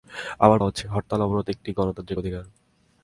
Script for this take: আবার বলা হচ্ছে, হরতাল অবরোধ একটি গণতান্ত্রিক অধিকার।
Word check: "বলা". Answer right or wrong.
wrong